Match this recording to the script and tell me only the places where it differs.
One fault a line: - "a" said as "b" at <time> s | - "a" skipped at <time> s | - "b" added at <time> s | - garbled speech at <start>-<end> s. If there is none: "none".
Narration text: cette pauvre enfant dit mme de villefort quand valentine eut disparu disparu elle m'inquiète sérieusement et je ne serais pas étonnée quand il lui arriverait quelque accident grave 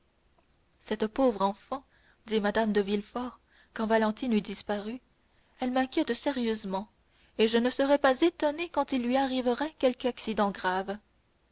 - "disparu" skipped at 5.0 s